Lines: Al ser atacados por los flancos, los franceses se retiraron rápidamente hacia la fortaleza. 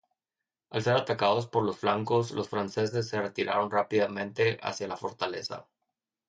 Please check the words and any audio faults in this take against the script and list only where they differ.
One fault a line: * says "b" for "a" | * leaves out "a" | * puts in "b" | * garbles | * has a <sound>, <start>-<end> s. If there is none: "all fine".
all fine